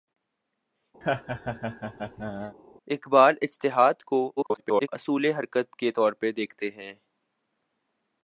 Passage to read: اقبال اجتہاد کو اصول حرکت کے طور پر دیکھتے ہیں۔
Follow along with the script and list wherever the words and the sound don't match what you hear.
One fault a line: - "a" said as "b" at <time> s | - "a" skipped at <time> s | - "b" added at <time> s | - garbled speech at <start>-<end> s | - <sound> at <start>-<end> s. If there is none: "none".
- laugh at 1.0-2.6 s
- garbled speech at 4.4-4.9 s